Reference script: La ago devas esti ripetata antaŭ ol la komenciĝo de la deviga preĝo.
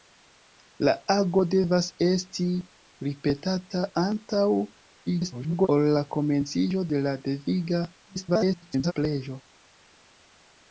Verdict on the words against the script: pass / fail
fail